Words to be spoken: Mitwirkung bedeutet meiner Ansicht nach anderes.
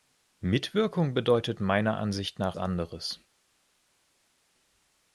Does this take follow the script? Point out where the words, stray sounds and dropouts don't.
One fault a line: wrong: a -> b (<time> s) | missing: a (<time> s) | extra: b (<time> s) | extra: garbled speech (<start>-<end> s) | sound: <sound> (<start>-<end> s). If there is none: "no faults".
no faults